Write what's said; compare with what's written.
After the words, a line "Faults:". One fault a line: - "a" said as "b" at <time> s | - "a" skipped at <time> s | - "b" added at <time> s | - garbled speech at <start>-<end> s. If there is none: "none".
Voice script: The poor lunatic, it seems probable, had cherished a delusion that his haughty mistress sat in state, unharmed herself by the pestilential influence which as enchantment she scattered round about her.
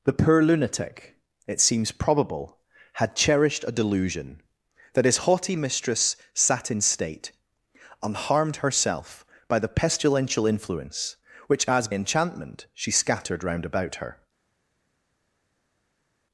The poor lunatic, it seems probable, had cherished a delusion that his haughty mistress sat in state, unharmed herself by the pestilential influence which as enchantment she scattered round about her.
Faults:
none